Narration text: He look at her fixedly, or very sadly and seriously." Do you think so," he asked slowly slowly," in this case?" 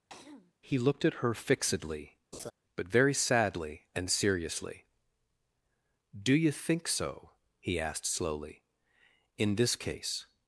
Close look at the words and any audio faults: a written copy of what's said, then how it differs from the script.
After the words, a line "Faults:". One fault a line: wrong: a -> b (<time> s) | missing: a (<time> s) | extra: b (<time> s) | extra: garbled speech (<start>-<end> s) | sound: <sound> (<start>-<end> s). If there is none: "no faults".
He looked at her fixedly, but very sadly and seriously." Do you think so," he asked slowly," in this case?"
Faults:
sound: throat clearing (0.1-0.5 s)
wrong: look -> looked (0.8 s)
sound: laugh (2.3-2.5 s)
wrong: or -> but (2.7 s)
missing: slowly (8.6 s)